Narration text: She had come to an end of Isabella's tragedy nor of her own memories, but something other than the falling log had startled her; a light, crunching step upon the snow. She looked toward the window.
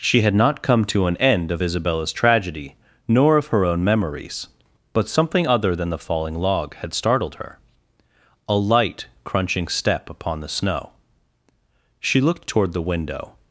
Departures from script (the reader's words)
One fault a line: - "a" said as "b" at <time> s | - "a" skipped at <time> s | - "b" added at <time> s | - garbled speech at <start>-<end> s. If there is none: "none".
- "not" added at 0.3 s